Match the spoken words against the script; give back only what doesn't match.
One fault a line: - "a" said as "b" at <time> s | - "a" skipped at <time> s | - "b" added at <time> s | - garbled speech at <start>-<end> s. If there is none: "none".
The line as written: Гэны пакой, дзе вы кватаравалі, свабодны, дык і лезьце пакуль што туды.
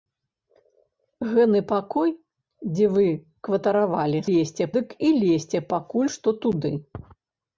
- "свабодны" said as "лезьце" at 4.3 s